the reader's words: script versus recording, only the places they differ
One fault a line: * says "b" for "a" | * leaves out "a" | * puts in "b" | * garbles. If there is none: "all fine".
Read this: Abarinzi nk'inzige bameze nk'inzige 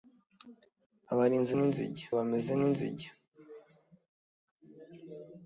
all fine